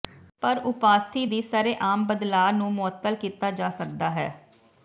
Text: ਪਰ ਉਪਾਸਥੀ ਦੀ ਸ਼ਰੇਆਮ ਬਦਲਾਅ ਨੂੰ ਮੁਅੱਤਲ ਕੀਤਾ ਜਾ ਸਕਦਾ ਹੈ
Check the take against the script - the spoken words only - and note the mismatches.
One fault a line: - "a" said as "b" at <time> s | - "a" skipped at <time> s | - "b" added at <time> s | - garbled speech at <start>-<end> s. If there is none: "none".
none